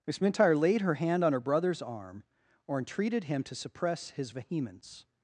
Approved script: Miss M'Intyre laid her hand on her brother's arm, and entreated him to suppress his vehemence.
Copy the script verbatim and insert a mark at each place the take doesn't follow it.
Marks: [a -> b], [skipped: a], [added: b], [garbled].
Miss M'Intyre laid her hand on her brother's arm, [and -> or] entreated him to suppress his vehemence.